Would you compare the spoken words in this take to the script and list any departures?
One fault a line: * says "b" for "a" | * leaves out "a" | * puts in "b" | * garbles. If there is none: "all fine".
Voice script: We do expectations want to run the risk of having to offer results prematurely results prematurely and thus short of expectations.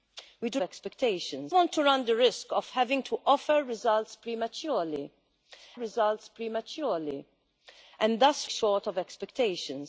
all fine